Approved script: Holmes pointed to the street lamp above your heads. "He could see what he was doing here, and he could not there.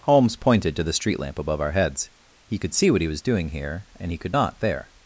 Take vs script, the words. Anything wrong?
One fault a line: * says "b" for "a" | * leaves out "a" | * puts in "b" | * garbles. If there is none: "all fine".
* says "our" for "your"